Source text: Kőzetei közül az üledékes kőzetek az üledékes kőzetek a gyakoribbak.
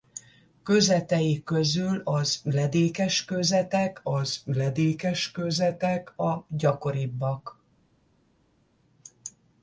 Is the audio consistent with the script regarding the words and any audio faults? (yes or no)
yes